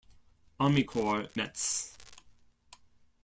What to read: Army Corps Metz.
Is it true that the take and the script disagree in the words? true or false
false